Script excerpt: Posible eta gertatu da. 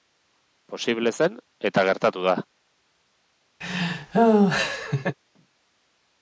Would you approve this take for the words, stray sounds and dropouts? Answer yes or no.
no